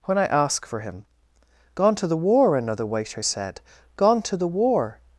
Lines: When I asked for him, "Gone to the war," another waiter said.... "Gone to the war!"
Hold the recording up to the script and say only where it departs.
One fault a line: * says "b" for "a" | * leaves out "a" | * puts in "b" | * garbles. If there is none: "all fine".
* says "ask" for "asked"